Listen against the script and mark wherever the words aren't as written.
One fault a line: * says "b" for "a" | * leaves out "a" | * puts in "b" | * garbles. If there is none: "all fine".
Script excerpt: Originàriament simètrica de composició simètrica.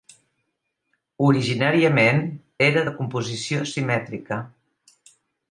* says "era" for "simètrica"